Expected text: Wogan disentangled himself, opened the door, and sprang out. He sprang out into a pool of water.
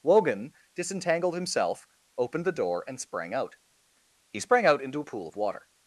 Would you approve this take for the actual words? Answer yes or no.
yes